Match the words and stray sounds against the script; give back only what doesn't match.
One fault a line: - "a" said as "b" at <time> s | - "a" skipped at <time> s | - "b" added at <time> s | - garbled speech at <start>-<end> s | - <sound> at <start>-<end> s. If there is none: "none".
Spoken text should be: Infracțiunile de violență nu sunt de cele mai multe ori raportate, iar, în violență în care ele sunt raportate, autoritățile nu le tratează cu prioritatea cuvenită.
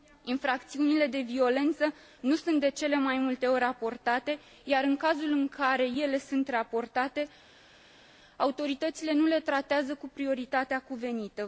- "violență" said as "cazul" at 5.0 s